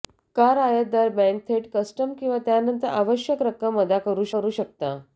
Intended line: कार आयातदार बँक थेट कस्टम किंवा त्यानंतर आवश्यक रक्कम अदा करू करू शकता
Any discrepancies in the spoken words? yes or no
no